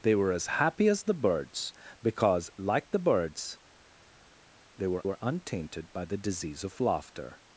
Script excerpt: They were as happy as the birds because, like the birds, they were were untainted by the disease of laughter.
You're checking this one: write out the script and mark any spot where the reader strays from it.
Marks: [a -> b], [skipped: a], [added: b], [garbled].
They were as happy as the birds because, like the birds, they were were untainted by the disease of laughter.